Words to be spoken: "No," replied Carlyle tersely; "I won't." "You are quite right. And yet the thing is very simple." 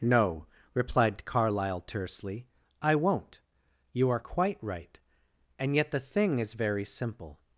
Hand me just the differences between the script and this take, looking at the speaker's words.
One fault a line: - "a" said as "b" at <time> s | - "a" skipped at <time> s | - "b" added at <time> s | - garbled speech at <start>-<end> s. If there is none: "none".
none